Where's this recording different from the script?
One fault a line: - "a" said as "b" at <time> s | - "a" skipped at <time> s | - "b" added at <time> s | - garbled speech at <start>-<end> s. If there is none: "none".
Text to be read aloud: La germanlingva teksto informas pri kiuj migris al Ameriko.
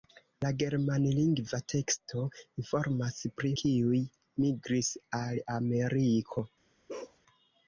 none